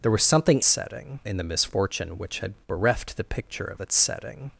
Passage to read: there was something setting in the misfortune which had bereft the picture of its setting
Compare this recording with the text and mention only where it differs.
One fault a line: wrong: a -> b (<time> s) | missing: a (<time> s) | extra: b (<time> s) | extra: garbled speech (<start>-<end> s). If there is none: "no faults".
no faults